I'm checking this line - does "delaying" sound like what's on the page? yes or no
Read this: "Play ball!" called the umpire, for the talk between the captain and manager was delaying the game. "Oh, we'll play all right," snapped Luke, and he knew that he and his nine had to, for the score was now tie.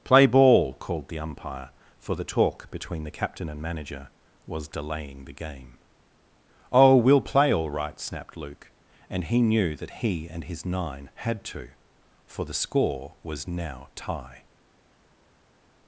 yes